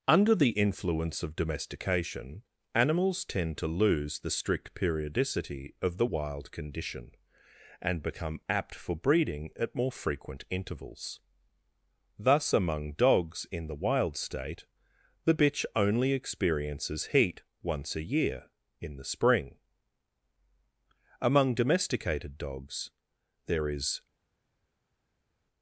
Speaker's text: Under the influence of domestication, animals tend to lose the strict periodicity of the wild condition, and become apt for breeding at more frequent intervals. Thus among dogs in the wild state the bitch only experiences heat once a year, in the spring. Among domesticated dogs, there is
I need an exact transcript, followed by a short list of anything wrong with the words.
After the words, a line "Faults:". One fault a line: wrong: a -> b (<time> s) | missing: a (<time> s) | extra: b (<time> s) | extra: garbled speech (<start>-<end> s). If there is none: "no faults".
Under the influence of domestication, animals tend to lose the strict periodicity of the wild condition, and become apt for breeding at more frequent intervals. Thus among dogs in the wild state the bitch only experiences heat once a year, in the spring. Among domesticated dogs, there is
Faults:
no faults